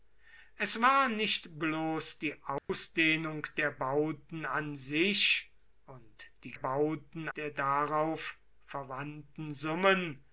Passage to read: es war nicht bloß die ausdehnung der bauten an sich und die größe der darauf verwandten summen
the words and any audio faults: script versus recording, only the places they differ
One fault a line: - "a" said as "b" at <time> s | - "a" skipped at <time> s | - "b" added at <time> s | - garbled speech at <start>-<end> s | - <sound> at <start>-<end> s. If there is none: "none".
- dropout at 2.6-2.7 s
- "größe" said as "bauten" at 6.5 s